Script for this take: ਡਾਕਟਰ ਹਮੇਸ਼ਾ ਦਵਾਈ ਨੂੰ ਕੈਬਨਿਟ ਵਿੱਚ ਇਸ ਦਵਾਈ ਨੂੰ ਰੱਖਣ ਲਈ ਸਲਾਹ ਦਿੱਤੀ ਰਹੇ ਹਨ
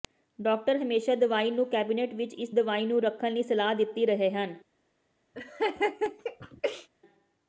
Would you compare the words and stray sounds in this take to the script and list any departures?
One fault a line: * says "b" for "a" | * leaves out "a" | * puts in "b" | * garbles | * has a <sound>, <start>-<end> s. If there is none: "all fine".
* has a laugh, 5.3-6.9 s